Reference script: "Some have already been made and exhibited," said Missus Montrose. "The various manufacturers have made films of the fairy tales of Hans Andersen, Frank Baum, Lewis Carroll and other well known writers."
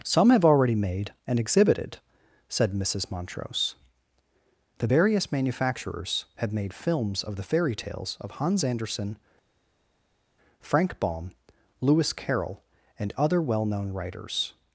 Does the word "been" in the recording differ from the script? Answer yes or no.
yes